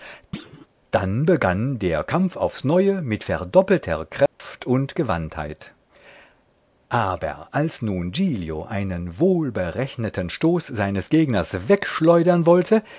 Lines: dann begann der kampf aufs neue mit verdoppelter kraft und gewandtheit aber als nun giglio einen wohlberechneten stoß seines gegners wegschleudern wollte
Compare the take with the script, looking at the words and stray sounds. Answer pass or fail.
fail